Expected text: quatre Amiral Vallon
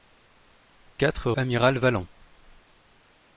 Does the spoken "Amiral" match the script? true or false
true